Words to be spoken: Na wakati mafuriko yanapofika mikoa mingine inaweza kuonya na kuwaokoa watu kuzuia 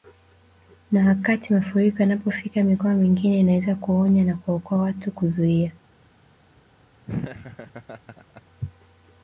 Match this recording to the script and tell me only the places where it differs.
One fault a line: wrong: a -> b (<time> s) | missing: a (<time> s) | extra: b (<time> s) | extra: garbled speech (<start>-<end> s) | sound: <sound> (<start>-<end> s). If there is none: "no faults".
sound: laugh (7.1-8.4 s)